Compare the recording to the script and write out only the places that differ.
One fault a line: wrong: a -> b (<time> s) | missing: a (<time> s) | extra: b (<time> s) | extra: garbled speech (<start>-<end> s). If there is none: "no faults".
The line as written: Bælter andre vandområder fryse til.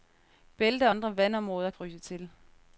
no faults